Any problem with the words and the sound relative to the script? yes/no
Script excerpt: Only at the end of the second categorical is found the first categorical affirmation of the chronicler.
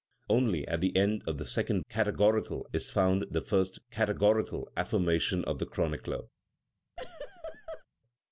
yes